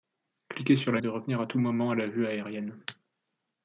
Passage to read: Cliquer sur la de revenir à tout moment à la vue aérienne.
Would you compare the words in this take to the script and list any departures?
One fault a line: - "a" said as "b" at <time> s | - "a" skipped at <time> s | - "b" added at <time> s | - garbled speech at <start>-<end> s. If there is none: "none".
none